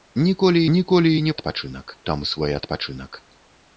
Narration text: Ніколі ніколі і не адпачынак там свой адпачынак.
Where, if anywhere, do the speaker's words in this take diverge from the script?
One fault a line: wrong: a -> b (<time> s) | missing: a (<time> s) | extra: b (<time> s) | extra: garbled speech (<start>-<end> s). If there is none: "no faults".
no faults